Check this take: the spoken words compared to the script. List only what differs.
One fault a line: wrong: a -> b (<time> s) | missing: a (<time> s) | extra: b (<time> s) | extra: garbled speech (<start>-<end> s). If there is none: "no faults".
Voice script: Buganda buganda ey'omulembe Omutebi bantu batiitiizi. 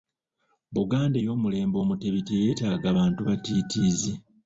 missing: buganda (1.2 s)
extra: teyeetaaga (2.3 s)